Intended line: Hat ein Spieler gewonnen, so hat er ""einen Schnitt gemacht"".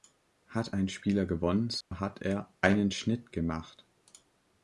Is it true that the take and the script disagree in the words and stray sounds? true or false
true